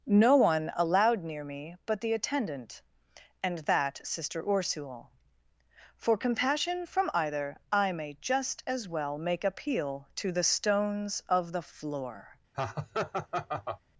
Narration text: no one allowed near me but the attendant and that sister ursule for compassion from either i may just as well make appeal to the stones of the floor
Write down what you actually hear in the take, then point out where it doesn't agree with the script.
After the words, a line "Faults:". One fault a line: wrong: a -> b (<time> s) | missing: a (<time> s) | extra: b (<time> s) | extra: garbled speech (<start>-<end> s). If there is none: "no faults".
no one allowed near me but the attendant and that sister ursule for compassion from either i may just as well make appeal to the stones of the floor
Faults:
no faults